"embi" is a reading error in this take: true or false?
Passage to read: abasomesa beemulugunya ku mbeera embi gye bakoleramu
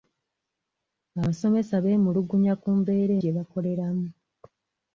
true